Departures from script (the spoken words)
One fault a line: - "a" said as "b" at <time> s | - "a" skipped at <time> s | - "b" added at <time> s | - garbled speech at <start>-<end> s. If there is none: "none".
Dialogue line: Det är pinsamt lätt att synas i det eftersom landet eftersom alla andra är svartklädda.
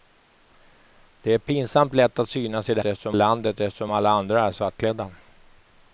none